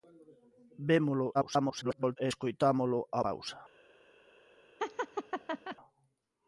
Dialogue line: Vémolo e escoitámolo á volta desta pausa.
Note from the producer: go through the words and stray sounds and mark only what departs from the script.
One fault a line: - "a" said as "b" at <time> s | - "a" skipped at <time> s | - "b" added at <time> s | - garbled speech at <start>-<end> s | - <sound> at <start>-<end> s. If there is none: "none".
- garbled speech at 1.3-2.2 s
- "volta desta" skipped at 3.2 s
- laugh at 4.8-5.8 s